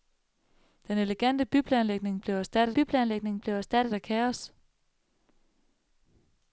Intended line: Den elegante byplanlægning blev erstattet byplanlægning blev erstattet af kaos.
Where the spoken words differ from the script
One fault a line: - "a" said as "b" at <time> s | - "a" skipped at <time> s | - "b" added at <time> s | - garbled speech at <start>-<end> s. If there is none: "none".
none